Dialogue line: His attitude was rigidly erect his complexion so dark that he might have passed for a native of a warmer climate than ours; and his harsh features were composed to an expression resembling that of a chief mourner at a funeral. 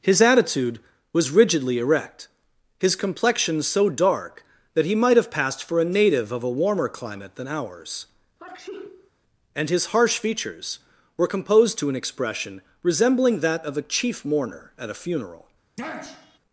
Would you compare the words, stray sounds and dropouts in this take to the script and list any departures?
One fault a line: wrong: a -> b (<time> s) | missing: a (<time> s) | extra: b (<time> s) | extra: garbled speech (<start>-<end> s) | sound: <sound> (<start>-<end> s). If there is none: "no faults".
sound: sneeze (8.4-9.1 s)
sound: sniff (15.8-16.4 s)